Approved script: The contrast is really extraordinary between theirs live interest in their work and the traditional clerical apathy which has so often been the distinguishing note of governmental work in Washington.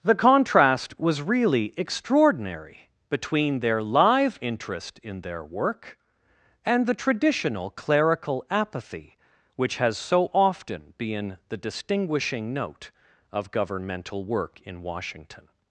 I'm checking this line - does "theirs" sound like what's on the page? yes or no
no